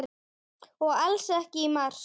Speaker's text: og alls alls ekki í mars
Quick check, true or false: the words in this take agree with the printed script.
false